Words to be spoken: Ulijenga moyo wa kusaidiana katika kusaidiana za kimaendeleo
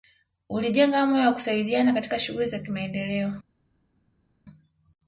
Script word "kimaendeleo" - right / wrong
right